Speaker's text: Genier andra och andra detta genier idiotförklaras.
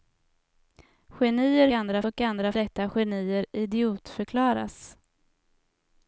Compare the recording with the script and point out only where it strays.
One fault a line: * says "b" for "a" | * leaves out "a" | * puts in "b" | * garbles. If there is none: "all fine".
all fine